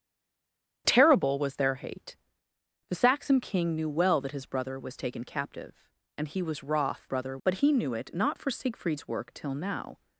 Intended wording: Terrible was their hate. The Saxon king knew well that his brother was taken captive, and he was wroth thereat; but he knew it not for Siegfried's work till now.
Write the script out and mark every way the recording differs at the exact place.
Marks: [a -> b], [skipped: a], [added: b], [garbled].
Terrible was their hate. The Saxon king knew well that his brother was taken captive, and he was wroth [thereat; -> brother] but he knew it not for Siegfried's work till now.